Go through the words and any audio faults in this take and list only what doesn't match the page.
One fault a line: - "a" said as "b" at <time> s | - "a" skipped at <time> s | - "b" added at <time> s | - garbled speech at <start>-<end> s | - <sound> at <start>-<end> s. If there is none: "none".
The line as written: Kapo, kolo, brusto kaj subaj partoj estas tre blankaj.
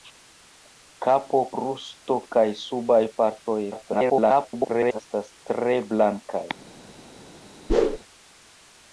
- "kolo" skipped at 1.4 s
- garbled speech at 3.7-5.0 s
- whoosh at 7.7-8.0 s